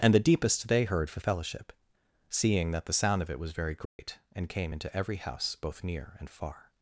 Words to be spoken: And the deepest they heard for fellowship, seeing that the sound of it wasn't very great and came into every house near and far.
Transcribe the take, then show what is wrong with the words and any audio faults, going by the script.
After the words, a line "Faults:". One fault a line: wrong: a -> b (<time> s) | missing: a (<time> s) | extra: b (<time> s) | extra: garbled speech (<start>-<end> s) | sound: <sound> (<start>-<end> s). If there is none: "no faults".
And the deepest they heard for fellowship, seeing that the sound of it was very great and came into every house both near and far.
Faults:
wrong: wasn't -> was (3.4 s)
sound: dropout (3.9-4.0 s)
extra: both (5.6 s)